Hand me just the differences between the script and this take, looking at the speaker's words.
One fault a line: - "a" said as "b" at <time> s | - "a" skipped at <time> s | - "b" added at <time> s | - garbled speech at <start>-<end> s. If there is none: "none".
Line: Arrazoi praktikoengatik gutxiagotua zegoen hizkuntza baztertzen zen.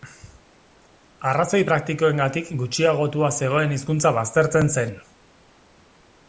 none